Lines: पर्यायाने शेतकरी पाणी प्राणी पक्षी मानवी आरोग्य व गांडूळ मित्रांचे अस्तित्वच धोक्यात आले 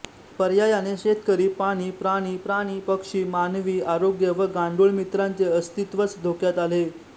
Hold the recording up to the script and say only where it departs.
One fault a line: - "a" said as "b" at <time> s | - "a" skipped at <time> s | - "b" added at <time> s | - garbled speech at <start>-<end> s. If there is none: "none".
- "प्राणी" added at 2.4 s